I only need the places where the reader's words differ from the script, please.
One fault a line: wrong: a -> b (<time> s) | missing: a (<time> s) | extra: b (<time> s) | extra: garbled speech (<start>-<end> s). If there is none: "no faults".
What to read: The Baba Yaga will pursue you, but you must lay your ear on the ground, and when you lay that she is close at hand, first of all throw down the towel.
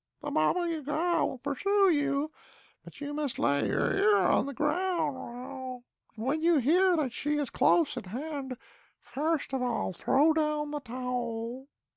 wrong: lay -> hear (6.6 s)